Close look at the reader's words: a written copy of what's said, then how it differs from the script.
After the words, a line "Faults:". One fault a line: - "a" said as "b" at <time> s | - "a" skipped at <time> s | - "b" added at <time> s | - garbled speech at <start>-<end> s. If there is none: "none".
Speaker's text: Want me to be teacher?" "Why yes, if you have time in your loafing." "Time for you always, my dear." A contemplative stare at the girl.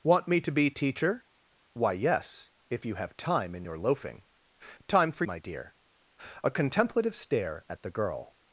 Want me to be teacher?" "Why yes, if you have time in your loafing." "Time for my dear." A contemplative stare at the girl.
Faults:
- "you always" skipped at 5.3 s